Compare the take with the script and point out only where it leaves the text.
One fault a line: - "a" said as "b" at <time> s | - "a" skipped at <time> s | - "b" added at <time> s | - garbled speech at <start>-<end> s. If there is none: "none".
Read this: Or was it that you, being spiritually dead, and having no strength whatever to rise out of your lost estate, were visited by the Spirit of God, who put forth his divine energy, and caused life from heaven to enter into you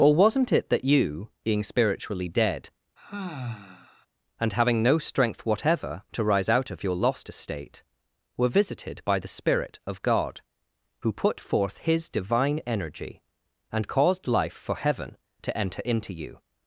- "was" said as "wasn't" at 0.1 s
- "from" said as "for" at 14.5 s